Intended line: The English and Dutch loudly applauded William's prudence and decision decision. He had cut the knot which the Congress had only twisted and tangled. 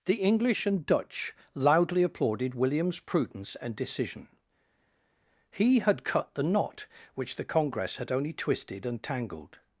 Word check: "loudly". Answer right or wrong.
right